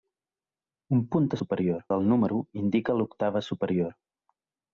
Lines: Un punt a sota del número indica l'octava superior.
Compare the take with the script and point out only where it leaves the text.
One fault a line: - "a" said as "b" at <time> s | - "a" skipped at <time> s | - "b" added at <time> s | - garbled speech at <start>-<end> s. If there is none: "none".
- "sota" said as "superior" at 1.4 s